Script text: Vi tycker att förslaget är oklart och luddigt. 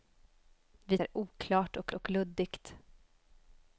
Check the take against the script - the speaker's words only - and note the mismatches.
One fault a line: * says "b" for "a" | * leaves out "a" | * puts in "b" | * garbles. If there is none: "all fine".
* leaves out "tycker att förslaget"
* puts in "och"